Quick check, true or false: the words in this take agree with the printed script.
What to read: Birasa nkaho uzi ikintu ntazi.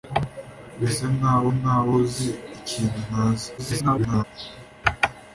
false